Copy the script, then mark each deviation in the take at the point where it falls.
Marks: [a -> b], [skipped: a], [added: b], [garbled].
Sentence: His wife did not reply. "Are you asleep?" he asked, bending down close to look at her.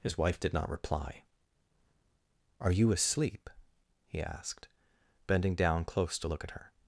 His wife did not reply. "Are you asleep?" he asked, bending down close to look at her.